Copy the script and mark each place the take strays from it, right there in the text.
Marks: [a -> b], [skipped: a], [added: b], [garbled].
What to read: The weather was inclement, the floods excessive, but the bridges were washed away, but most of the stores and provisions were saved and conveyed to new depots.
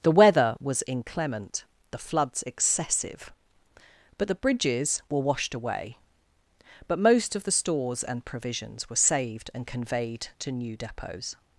The weather was inclement, the floods excessive, but the bridges were washed away, but most of the stores and provisions were saved and conveyed to new depots.